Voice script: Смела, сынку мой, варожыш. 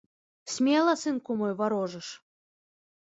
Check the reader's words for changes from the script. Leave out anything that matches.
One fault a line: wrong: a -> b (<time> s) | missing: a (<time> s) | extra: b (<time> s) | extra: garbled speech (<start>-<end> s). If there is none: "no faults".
no faults